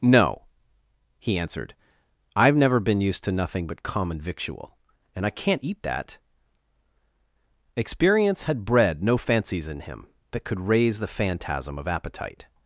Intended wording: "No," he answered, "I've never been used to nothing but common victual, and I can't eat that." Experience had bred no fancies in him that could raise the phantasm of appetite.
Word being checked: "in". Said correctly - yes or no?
yes